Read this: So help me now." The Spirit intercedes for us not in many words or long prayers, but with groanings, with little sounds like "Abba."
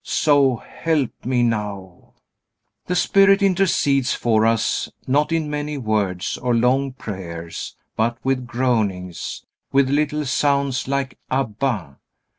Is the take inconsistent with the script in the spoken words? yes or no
no